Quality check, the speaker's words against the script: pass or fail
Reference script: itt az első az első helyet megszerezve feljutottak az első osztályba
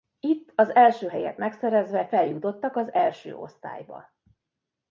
fail